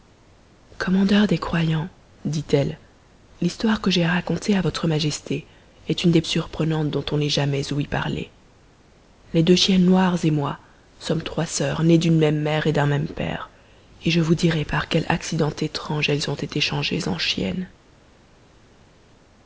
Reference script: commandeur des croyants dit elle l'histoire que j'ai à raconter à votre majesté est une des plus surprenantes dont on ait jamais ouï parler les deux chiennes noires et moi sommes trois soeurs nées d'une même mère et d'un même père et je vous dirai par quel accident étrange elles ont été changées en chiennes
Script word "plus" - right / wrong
wrong